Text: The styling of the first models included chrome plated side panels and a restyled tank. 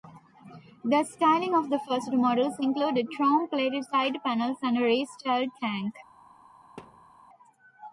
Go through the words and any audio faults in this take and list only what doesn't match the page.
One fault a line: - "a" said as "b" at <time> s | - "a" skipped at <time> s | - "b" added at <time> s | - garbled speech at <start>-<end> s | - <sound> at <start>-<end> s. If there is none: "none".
- thud at 6.8-7.1 s